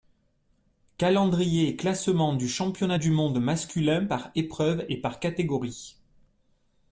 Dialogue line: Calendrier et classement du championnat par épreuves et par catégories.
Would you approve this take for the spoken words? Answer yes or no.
no